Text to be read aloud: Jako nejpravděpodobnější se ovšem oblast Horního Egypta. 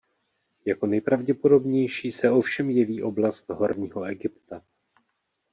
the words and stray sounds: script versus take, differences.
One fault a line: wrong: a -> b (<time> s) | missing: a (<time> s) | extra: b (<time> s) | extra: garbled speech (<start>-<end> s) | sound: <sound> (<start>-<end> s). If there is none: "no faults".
extra: jeví (2.7 s)